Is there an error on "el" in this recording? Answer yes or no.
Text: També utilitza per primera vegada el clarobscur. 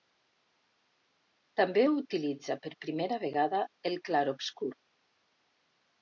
no